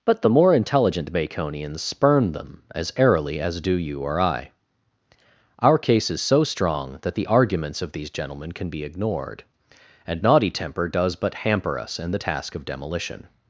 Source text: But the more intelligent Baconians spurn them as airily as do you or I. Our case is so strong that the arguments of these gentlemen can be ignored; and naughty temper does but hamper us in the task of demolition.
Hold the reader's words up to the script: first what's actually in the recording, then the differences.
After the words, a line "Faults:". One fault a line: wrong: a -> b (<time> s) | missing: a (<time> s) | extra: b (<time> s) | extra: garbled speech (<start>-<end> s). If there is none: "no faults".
But the more intelligent Baconians spurn them as airily as do you or I. Our case is so strong that the arguments of these gentlemen can be ignored; and naughty temper does but hamper us in the task of demolition.
Faults:
no faults